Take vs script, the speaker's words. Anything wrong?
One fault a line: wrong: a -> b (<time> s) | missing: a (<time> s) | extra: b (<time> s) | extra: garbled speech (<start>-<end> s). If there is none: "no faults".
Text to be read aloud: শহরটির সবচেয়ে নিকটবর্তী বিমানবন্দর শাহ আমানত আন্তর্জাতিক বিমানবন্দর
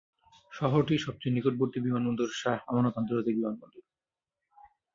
no faults